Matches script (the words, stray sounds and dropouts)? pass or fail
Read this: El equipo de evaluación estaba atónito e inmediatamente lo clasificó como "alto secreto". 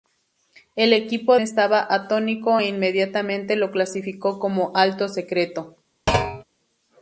fail